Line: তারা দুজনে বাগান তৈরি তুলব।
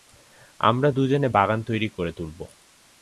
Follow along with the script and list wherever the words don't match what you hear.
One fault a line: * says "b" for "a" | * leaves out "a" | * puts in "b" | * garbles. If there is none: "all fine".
* says "আমরা" for "তারা"
* puts in "করে"